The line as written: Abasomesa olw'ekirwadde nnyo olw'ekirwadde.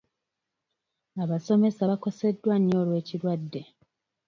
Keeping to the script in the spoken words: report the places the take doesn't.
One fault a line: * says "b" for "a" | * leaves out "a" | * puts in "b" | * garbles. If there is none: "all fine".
* says "bakoseddwa" for "olw'ekirwadde"